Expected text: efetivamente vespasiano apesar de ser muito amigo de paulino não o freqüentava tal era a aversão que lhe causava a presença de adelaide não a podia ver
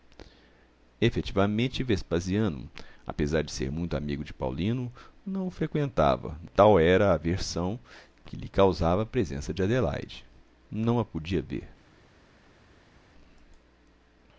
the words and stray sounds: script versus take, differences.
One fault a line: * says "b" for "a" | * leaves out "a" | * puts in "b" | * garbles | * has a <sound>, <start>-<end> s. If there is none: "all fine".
all fine